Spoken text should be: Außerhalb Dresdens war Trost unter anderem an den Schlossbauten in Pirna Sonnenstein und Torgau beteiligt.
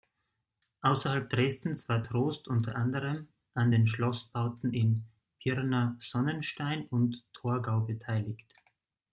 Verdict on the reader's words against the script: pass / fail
pass